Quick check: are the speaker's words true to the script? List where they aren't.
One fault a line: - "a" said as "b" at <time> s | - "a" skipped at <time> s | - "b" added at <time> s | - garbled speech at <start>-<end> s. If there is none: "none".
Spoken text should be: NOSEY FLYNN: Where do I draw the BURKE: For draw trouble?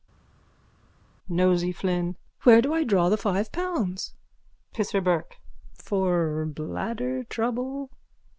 - "five pounds PISSER" added at 3.2 s
- "draw" said as "bladder" at 6.5 s